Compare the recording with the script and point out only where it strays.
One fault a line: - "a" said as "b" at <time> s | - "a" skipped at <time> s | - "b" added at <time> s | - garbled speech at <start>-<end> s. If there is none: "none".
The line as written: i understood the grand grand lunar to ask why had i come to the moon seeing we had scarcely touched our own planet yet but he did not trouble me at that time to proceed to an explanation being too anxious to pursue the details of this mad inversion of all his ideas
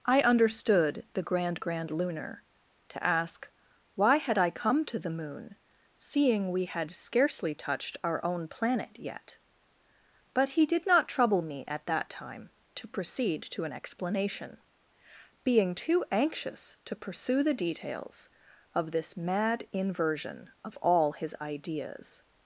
none